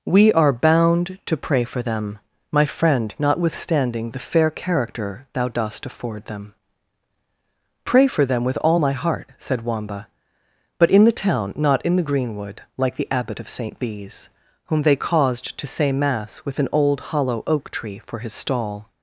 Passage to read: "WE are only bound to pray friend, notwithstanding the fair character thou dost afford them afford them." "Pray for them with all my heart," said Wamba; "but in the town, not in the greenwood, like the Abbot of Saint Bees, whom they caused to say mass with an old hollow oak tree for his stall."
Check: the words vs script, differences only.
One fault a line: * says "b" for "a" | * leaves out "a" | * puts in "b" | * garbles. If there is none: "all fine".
* leaves out "only"
* puts in "for them my"
* leaves out "afford them"